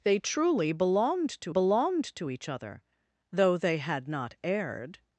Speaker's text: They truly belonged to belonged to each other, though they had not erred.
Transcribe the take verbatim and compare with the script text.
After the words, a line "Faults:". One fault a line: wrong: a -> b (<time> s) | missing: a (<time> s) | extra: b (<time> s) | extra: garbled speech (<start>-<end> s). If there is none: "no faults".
They truly belonged to belonged to each other, though they had not erred.
Faults:
no faults